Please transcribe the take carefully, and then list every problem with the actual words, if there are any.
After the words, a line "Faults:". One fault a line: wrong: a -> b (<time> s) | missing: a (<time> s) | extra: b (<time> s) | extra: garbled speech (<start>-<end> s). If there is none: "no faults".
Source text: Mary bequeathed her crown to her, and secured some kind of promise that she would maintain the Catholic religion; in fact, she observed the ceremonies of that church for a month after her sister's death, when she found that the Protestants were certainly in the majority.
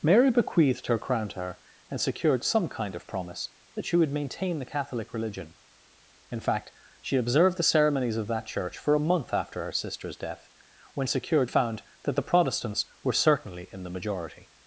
Mary bequeathed her crown to her, and secured some kind of promise that she would maintain the Catholic religion; in fact, she observed the ceremonies of that church for a month after her sister's death, when secured found that the Protestants were certainly in the majority.
Faults:
wrong: she -> secured (11.1 s)